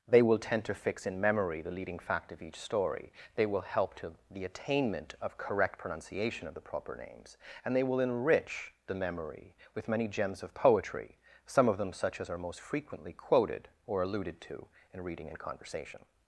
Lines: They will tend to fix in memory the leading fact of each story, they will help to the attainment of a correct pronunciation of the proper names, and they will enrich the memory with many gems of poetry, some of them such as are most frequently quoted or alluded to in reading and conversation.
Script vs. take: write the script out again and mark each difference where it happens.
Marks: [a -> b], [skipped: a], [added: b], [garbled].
They will tend to fix in memory the leading fact of each story, they will help to the attainment of [skipped: a] correct pronunciation of the proper names, and they will enrich the memory with many gems of poetry, some of them such as are most frequently quoted or alluded to in reading and conversation.